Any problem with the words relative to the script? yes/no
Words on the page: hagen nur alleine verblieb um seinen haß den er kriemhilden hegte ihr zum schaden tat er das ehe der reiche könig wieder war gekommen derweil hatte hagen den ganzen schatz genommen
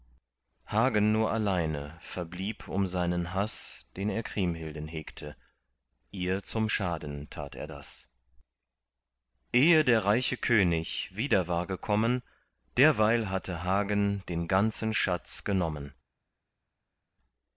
no